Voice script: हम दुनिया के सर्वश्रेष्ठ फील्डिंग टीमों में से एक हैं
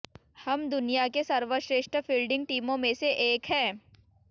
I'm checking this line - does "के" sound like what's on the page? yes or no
yes